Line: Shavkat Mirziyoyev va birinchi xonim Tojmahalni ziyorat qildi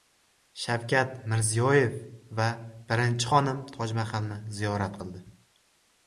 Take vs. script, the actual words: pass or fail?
pass